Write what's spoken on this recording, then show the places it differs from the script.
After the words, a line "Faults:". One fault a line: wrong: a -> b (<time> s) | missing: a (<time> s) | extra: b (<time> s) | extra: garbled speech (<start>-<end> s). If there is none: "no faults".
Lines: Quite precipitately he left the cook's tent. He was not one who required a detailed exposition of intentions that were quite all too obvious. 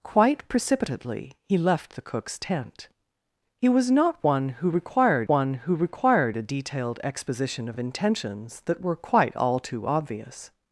Quite precipitately he left the cook's tent. He was not one who required one who required a detailed exposition of of intentions that were quite all too obvious.
Faults:
extra: one who required (5.3 s)
extra: of (7.7 s)